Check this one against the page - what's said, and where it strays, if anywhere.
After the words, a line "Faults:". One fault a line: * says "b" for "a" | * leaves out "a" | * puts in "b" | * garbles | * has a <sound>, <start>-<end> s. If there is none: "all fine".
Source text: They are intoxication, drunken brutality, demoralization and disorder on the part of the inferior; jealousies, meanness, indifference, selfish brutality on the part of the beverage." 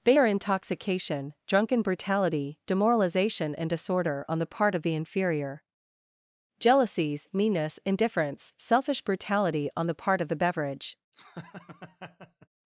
They are intoxication, drunken brutality, demoralization and disorder on the part of the inferior; jealousies, meanness, indifference, selfish brutality on the part of the beverage."
Faults:
* has a laugh, 11.1-12.5 s